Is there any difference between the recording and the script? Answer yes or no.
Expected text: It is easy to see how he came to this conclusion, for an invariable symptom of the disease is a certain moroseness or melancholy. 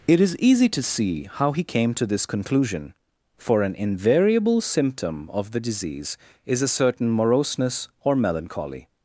no